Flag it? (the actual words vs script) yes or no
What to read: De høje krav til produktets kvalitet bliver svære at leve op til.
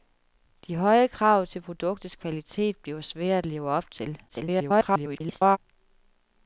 yes